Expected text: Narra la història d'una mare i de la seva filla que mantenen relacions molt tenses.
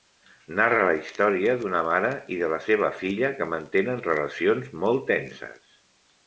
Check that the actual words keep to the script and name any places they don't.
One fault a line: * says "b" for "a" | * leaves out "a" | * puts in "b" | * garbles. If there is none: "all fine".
all fine